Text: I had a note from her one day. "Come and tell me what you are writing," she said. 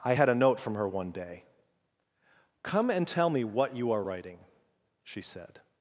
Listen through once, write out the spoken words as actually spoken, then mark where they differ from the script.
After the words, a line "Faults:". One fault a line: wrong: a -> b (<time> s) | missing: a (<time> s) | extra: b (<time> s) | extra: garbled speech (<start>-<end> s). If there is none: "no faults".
I had a note from her one day. "Come and tell me what you are writing," she said.
Faults:
no faults